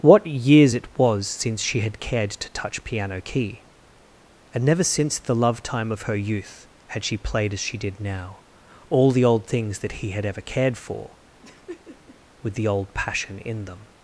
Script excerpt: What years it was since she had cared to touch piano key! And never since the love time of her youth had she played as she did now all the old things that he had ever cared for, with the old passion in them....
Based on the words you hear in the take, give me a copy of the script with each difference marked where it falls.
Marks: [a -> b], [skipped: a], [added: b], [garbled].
What years it was since she had cared to touch piano key! And never since the love time of her youth had she played as she did now all the old things that he had ever cared for, with the old passion in them....